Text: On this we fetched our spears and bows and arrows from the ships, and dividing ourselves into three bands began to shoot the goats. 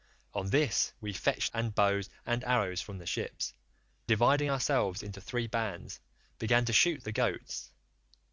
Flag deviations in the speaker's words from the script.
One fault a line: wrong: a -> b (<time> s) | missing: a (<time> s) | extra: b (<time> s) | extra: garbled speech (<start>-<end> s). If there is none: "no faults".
missing: our spears (1.5 s)
missing: and (3.5 s)